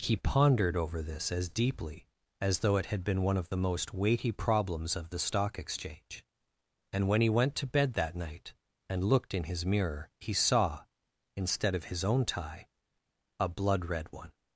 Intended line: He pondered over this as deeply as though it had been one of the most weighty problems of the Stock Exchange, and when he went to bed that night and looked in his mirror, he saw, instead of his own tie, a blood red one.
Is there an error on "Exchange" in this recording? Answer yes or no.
no